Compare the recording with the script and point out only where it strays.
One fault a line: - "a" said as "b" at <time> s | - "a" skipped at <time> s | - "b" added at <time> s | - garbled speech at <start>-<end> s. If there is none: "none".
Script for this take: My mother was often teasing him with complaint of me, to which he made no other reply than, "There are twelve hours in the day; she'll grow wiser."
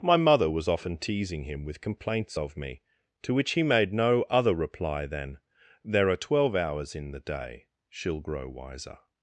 - "complaint" said as "complaints" at 1.8 s